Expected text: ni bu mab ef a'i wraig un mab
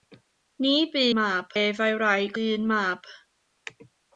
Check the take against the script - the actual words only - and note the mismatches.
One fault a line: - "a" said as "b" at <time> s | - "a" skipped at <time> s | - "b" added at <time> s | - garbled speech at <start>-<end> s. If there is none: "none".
none